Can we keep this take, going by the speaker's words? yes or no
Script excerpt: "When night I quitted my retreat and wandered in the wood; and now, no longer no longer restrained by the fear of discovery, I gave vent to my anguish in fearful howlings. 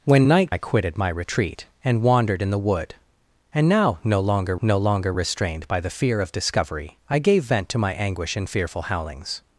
yes